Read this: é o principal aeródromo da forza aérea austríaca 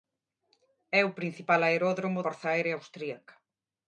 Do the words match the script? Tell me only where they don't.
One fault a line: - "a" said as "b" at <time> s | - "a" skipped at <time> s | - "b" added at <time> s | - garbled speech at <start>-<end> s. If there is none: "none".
- "da" skipped at 2.2 s